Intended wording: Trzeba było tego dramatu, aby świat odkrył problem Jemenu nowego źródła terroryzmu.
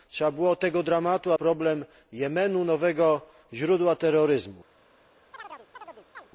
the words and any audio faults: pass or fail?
fail